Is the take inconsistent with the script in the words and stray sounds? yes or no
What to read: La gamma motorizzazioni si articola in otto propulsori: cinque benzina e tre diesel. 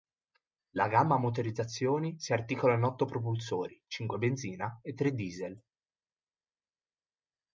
no